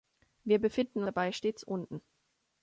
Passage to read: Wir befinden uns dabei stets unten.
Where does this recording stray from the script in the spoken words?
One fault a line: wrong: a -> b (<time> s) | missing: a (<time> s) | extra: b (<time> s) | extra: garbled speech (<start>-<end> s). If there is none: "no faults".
missing: uns (1.0 s)